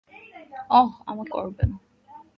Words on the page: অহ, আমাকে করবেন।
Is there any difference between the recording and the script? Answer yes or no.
no